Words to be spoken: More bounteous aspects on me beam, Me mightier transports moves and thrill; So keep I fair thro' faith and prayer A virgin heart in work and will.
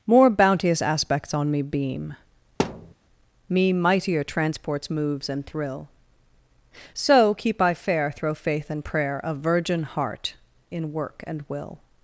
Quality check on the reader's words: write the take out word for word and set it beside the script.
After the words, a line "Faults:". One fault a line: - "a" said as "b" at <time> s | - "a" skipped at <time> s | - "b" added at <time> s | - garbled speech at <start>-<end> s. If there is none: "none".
More bounteous aspects on me beam, Me mightier transports moves and thrill; So keep I fair thro' faith and prayer A virgin heart in work and will.
Faults:
none